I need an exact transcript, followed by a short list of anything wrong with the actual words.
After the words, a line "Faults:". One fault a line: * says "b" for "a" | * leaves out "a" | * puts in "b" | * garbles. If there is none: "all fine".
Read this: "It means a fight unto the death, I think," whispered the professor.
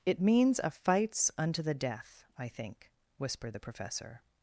"It means a fights unto the death, I think," whispered the professor.
Faults:
* says "fights" for "fight"